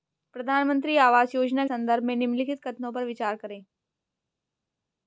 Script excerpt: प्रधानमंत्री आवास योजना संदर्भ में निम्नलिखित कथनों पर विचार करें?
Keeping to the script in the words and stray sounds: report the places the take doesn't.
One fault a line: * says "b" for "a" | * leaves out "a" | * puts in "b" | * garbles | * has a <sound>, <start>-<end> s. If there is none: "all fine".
all fine